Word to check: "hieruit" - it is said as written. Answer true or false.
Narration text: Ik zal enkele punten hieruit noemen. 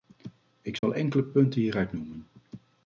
true